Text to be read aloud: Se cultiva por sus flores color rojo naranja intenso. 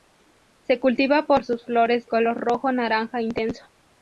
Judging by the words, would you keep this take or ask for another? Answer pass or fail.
pass